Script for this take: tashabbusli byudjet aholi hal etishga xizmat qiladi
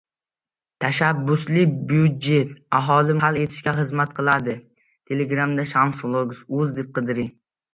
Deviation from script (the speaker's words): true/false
false